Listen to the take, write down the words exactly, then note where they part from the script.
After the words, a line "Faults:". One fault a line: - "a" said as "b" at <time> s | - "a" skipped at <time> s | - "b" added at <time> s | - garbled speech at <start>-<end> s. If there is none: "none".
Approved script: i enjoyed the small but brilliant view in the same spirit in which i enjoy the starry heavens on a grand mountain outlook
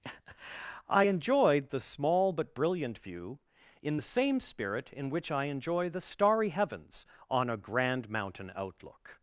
i enjoyed the small but brilliant view in the same spirit in which i enjoy the starry heavens on a grand mountain outlook
Faults:
none